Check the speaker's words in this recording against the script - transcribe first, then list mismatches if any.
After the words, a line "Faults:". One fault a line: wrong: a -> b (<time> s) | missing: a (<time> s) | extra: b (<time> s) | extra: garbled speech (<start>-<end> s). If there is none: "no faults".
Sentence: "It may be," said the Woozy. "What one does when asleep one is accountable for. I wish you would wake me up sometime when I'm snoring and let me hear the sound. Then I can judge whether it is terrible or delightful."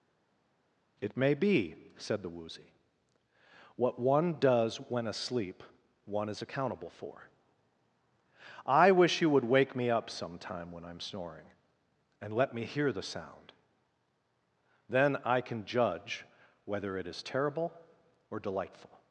"It may be," said the Woozy. "What one does when asleep one is accountable for. I wish you would wake me up sometime when I'm snoring and let me hear the sound. Then I can judge whether it is terrible or delightful."
Faults:
no faults